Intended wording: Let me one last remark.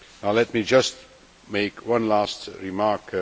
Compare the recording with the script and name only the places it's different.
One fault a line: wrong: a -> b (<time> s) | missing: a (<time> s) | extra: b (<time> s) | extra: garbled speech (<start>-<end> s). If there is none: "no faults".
extra: just make (0.6 s)